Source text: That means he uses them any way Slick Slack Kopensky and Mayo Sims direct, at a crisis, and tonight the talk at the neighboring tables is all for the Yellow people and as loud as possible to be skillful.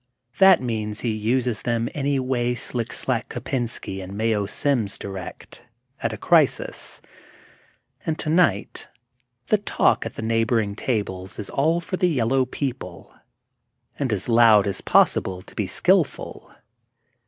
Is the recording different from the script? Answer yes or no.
no